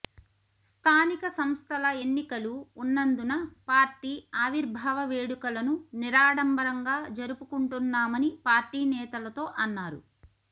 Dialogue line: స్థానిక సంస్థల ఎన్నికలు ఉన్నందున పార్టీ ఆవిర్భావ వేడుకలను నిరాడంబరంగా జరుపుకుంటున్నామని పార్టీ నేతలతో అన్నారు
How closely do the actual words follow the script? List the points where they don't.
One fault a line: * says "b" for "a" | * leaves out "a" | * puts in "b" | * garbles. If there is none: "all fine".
all fine